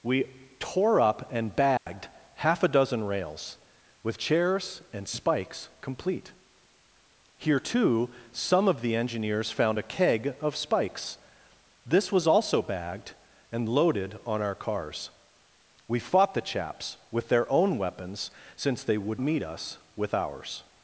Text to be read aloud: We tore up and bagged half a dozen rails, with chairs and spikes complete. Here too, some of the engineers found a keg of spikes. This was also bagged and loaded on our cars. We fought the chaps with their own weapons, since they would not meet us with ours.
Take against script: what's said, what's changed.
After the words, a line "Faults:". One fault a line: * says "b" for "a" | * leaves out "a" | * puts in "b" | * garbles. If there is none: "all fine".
We tore up and bagged half a dozen rails, with chairs and spikes complete. Here too, some of the engineers found a keg of spikes. This was also bagged and loaded on our cars. We fought the chaps with their own weapons, since they would meet us with ours.
Faults:
* leaves out "not"